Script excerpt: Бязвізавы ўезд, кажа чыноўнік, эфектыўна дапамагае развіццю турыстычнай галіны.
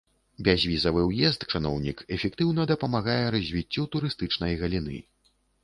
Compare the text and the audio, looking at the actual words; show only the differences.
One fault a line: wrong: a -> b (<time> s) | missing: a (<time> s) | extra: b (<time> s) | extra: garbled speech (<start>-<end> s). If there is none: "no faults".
missing: кажа (1.4 s)